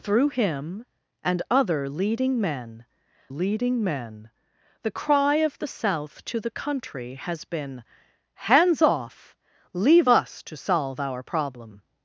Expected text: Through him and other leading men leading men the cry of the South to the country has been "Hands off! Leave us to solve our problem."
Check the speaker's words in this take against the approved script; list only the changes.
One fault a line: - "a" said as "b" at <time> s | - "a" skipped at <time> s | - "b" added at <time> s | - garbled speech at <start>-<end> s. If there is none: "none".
none